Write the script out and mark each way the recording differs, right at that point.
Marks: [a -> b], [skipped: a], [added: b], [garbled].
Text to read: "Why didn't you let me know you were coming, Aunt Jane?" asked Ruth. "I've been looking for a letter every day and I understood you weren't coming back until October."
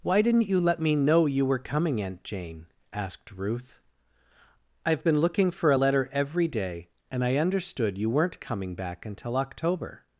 "Why didn't you let me know you were coming, Aunt Jane?" asked Ruth. "I've been looking for a letter every day and I understood you weren't coming back until October."